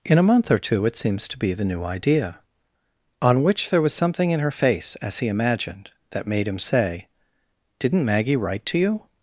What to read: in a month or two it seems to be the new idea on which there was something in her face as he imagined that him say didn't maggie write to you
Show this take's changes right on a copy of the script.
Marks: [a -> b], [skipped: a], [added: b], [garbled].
in a month or two it seems to be the new idea on which there was something in her face as he imagined that [added: made] him say didn't maggie write to you